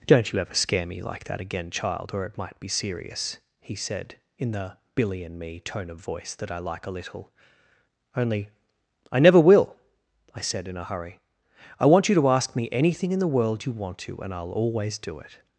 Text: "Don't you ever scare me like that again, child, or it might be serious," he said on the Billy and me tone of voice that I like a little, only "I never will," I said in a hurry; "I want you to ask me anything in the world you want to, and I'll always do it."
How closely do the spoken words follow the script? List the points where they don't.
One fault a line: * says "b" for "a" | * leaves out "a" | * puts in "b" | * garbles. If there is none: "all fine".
* says "in" for "on"